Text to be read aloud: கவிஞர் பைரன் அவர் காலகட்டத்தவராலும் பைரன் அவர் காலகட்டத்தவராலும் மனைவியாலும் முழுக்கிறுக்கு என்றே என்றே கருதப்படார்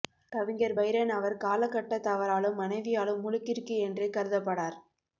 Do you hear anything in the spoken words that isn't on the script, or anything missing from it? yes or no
yes